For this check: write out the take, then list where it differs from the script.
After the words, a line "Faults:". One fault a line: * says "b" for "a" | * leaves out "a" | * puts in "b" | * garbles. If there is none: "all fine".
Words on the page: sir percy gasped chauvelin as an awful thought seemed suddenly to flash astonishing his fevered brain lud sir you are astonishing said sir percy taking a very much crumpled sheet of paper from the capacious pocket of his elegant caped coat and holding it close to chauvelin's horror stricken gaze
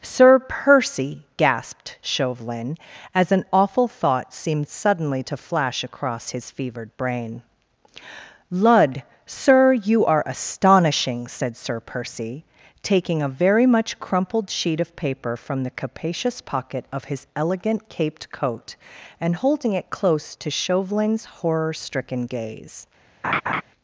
sir percy gasped chauvelin as an awful thought seemed suddenly to flash across his fevered brain lud sir you are astonishing said sir percy taking a very much crumpled sheet of paper from the capacious pocket of his elegant caped coat and holding it close to chauvelin's horror stricken gaze
Faults:
* says "across" for "astonishing"